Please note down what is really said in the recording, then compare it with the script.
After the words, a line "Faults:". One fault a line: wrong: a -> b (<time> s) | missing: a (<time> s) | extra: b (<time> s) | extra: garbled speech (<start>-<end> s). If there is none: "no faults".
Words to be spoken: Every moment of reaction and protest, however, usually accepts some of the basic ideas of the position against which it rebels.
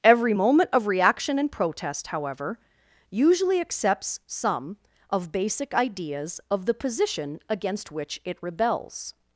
Every moment of reaction and protest, however, usually accepts some of basic ideas of the position against which it rebels.
Faults:
missing: the (5.3 s)